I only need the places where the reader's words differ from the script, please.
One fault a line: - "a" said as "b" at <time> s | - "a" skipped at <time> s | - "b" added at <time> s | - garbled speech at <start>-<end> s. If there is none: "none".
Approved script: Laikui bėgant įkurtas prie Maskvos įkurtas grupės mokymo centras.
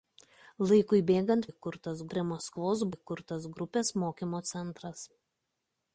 none